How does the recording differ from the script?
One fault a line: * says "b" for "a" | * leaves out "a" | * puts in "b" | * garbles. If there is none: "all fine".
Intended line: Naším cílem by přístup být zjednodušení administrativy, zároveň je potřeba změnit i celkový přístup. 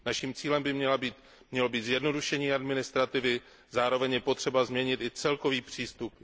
* says "mělo" for "přístup"